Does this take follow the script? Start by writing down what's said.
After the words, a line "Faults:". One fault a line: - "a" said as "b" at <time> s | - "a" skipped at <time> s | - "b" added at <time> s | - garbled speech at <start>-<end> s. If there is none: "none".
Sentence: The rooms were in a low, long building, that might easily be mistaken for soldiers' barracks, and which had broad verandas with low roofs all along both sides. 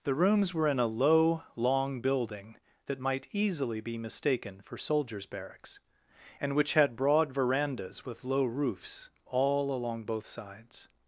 The rooms were in a low, long building, that might easily be mistaken for soldiers' barracks, and which had broad verandas with low roofs all along both sides.
Faults:
none